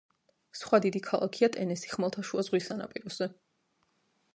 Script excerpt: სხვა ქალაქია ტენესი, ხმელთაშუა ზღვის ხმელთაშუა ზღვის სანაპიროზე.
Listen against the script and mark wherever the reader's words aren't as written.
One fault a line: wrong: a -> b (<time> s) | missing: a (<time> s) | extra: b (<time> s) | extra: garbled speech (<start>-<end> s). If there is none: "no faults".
extra: დიდი (0.9 s)
missing: ხმელთაშუა ზღვის (2.7 s)